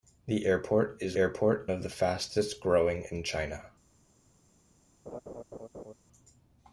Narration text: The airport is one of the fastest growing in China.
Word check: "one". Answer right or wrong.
wrong